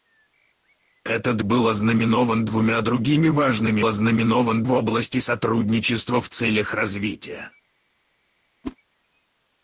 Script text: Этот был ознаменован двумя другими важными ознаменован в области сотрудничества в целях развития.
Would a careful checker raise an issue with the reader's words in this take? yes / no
no